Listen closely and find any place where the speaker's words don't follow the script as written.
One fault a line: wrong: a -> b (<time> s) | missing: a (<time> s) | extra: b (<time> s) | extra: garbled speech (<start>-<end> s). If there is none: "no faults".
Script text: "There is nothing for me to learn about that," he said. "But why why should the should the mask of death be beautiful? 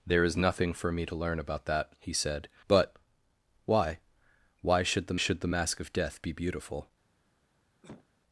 no faults